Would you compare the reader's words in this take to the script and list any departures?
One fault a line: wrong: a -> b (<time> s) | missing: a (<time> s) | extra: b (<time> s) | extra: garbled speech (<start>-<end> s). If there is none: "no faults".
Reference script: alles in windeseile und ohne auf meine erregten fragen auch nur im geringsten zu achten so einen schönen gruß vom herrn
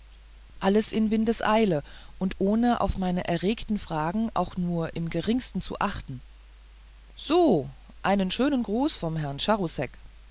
no faults